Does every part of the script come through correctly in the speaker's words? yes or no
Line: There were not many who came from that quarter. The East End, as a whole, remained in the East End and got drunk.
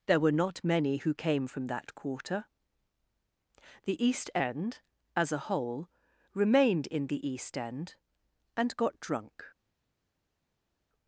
yes